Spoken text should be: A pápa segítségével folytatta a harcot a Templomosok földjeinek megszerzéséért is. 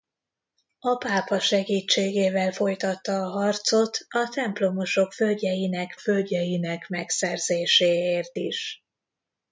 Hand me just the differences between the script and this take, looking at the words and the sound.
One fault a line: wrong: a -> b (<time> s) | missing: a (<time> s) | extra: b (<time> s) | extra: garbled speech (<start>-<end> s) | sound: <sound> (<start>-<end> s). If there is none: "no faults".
extra: földjeinek (6.0 s)